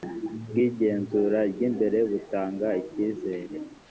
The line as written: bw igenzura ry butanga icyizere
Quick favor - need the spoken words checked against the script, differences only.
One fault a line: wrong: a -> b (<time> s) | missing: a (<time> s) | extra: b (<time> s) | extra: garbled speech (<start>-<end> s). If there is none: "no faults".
extra: imbere (1.7 s)